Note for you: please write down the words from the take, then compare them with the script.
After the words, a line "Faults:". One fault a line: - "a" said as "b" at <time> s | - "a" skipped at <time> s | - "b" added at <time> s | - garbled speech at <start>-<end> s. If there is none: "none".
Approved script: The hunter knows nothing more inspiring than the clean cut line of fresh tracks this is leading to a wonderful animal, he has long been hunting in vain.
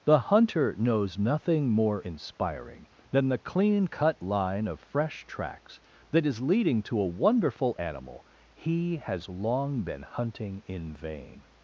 The hunter knows nothing more inspiring than the clean cut line of fresh tracks that is leading to a wonderful animal, he has long been hunting in vain.
Faults:
- "this" said as "that" at 6.1 s